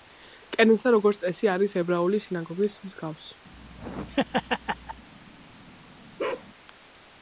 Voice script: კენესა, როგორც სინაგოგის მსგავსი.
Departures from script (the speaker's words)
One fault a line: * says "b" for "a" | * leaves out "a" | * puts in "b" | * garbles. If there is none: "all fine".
* puts in "წესი არის ებრაული"